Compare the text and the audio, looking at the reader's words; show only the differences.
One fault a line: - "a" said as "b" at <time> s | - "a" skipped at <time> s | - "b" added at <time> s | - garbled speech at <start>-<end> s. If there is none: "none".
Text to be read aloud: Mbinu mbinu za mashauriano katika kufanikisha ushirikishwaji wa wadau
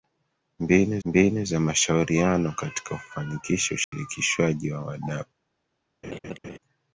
none